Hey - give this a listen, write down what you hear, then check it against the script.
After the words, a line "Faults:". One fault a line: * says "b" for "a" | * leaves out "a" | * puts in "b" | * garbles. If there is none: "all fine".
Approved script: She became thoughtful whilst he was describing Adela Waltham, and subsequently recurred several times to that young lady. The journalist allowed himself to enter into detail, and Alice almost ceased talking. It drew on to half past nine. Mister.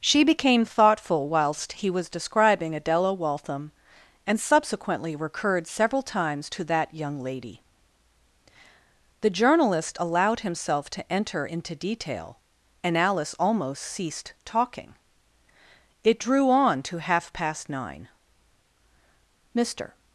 She became thoughtful whilst he was describing Adela Waltham, and subsequently recurred several times to that young lady. The journalist allowed himself to enter into detail, and Alice almost ceased talking. It drew on to half past nine. Mister.
Faults:
all fine